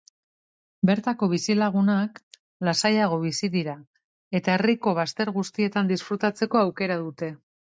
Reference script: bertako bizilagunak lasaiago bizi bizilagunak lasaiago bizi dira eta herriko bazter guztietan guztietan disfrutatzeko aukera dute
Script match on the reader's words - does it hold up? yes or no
no